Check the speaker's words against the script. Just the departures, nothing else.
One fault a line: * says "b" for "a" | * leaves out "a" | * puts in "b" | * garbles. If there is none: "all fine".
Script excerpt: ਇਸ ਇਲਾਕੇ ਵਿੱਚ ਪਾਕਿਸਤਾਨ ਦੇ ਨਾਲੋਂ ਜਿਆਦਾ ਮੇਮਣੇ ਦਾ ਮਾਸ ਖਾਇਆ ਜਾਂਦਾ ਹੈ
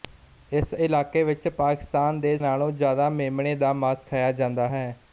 all fine